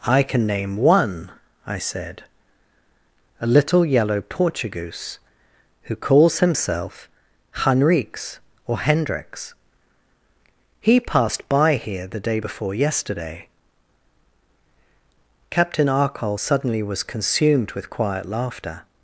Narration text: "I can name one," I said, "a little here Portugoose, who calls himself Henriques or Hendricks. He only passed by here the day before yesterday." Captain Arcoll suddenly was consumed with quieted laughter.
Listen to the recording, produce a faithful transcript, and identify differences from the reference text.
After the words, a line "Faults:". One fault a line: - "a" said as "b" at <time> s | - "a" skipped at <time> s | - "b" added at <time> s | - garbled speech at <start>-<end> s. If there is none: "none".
"I can name one," I said, "a little yellow Portugoose, who calls himself Henriques or Hendricks. He passed by here the day before yesterday." Captain Arcoll suddenly was consumed with quiet laughter.
Faults:
- "here" said as "yellow" at 3.9 s
- "only" skipped at 11.0 s
- "quieted" said as "quiet" at 17.9 s